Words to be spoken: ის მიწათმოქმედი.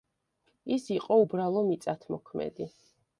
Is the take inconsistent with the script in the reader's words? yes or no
yes